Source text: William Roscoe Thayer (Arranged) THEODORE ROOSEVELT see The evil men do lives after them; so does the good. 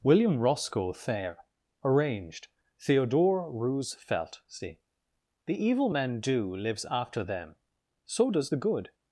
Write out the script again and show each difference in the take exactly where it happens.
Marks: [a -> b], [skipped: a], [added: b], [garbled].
William Roscoe Thayer (Arranged) THEODORE ROOSEVELT see The evil men do lives after them; so does the good.